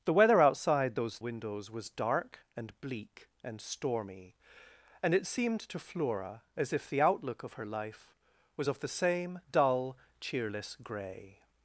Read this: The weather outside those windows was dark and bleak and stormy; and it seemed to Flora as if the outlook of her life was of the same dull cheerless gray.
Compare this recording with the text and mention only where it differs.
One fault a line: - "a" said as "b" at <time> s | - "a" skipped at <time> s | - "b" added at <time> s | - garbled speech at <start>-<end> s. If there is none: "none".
none